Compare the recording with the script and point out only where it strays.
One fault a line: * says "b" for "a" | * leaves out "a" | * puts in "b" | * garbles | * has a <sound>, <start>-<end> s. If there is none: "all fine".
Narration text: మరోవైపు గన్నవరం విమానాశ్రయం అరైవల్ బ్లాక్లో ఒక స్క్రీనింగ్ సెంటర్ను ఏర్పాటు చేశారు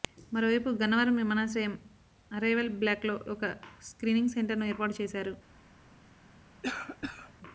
* has a cough, 6.6-7.3 s